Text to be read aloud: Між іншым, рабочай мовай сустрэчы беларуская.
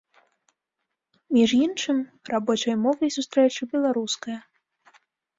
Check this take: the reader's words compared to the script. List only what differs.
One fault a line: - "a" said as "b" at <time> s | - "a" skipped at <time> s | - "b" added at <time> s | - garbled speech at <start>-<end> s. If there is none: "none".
none